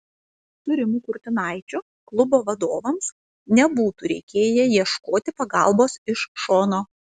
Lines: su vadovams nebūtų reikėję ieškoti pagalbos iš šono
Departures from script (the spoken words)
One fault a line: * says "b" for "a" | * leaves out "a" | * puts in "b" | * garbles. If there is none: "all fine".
* puts in "rimu kurtinaičiu klubo"